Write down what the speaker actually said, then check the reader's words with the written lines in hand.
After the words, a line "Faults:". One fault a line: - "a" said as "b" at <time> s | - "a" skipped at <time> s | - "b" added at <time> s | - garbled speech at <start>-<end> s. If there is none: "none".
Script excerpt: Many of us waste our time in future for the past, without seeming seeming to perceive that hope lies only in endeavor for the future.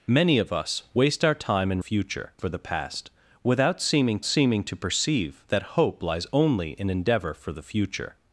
Many of us waste our time in future for the past, without seeming seeming to perceive that hope lies only in endeavor for the future.
Faults:
none